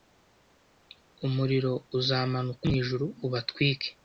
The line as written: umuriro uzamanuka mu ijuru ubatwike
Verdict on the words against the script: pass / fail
pass